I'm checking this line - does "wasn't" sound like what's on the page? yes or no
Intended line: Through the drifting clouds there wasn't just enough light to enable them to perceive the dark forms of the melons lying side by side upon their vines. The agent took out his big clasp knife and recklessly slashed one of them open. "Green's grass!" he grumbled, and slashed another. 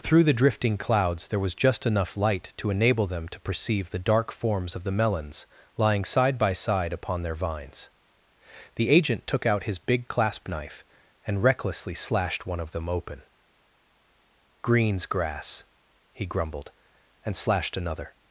no